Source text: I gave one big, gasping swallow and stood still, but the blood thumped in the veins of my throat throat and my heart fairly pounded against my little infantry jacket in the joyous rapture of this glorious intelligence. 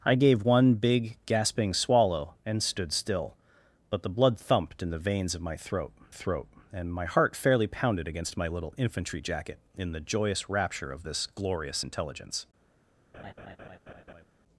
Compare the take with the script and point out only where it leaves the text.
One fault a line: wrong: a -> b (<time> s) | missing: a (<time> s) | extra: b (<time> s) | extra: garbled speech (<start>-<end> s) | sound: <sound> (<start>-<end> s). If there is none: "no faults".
sound: laugh (13.1-14.3 s)